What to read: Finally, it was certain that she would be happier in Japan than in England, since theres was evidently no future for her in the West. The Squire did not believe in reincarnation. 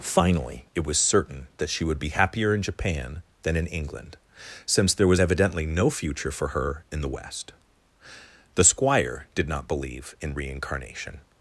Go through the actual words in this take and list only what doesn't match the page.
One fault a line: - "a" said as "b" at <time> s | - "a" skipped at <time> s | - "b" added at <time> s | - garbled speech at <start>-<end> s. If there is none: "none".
- "theres" said as "there" at 4.9 s